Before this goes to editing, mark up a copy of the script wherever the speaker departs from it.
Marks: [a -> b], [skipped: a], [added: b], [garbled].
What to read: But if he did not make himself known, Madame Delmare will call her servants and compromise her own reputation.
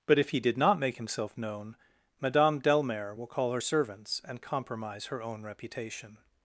But if he did not make himself known, Madame Delmare will call her servants and compromise her own reputation.